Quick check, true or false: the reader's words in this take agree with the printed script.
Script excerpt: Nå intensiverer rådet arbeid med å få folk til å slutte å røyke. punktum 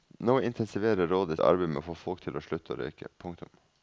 true